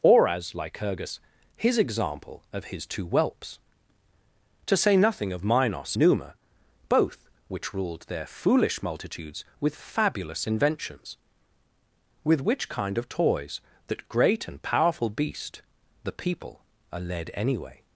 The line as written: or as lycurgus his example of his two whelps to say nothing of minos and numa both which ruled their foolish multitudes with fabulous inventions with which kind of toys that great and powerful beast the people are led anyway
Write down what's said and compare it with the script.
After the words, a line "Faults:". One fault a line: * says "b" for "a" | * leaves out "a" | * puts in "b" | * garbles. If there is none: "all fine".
or as lycurgus his example of his two whelps to say nothing of minos numa both which ruled their foolish multitudes with fabulous inventions with which kind of toys that great and powerful beast the people are led anyway
Faults:
* leaves out "and"